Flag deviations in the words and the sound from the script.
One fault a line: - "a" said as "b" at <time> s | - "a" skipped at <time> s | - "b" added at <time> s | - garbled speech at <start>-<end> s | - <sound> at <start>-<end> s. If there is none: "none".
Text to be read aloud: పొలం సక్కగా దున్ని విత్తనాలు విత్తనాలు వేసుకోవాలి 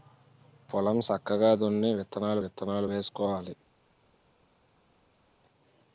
none